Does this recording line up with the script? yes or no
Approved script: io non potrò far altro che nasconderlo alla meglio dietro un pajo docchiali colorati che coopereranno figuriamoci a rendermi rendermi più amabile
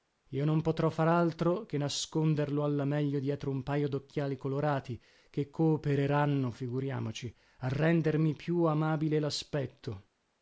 no